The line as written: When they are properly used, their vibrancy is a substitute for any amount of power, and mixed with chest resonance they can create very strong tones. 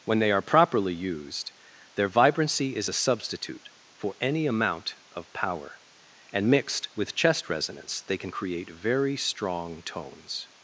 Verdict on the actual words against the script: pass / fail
pass